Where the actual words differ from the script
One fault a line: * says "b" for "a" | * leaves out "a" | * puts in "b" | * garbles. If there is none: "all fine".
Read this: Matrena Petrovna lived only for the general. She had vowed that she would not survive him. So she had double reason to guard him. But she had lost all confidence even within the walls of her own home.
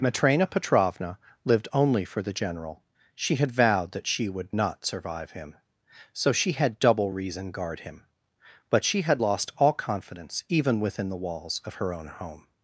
* leaves out "to"